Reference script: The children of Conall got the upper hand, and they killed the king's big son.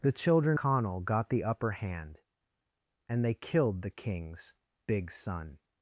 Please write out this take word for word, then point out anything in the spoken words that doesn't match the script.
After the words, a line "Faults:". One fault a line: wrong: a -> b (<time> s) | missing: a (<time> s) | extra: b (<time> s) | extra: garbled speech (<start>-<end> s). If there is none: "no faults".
The children Conall got the upper hand, and they killed the king's big son.
Faults:
missing: of (0.6 s)